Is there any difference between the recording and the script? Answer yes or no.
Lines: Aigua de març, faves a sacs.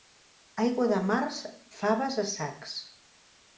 no